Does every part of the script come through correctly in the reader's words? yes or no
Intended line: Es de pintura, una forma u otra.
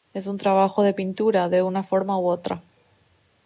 no